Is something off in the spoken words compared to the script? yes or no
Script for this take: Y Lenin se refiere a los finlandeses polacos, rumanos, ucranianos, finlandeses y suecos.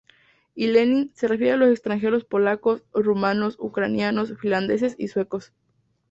yes